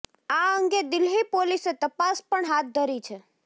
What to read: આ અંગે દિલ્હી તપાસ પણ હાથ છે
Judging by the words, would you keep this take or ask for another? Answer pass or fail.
fail